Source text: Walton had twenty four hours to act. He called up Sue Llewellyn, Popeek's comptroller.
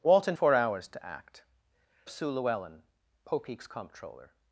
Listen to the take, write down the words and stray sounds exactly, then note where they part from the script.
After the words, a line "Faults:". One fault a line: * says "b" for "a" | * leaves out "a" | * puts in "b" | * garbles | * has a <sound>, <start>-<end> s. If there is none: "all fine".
Walton four hours to act. Sue Llewellyn, Popeek's comptroller.
Faults:
* leaves out "had twenty"
* leaves out "He called up"